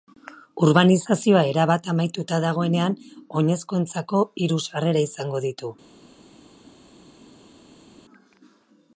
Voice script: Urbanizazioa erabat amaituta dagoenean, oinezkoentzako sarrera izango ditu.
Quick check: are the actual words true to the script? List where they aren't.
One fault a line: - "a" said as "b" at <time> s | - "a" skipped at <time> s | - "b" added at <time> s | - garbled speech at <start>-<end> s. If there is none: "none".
- "hiru" added at 4.5 s